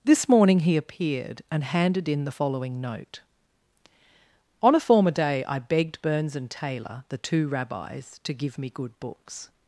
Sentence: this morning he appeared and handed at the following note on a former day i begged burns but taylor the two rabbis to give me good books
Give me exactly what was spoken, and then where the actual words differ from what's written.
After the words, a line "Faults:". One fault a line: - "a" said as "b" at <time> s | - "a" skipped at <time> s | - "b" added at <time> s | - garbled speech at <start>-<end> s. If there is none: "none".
this morning he appeared and handed in the following note on a former day i begged burns and taylor the two rabbis to give me good books
Faults:
- "at" said as "in" at 2.1 s
- "but" said as "and" at 6.4 s